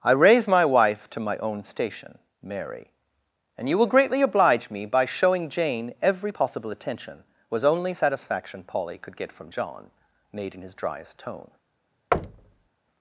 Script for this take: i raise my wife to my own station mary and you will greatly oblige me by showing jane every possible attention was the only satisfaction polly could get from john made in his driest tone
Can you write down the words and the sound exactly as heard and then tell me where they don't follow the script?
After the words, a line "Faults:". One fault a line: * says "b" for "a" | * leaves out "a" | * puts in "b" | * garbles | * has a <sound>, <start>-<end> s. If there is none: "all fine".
i raise my wife to my own station mary and you will greatly oblige me by showing jane every possible attention was only satisfaction polly could get from john made in his driest tone
Faults:
* leaves out "the"
* has a thud, 12.1-12.7 s